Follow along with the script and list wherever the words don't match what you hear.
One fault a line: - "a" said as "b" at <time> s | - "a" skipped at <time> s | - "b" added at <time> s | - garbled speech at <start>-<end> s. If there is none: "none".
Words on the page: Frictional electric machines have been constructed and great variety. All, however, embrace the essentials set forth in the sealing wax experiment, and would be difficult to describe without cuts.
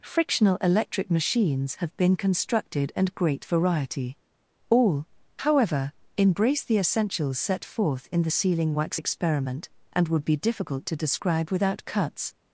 none